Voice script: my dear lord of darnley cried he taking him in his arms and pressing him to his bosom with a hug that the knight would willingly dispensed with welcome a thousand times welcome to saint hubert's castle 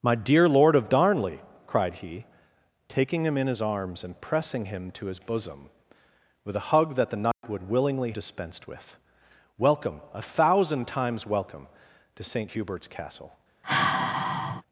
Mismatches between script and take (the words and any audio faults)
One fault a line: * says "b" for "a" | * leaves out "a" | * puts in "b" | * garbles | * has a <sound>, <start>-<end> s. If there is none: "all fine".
* has a dropout, 7.3-7.4 s
* has a sigh, 13.6-14.6 s